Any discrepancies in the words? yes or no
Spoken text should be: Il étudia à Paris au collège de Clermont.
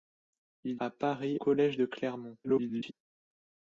yes